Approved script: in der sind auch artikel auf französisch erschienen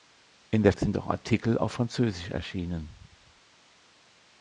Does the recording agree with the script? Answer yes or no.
yes